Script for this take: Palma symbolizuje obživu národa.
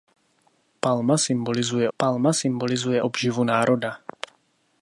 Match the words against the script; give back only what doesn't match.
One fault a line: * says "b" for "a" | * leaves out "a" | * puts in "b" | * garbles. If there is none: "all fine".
* puts in "palma symbolizuje"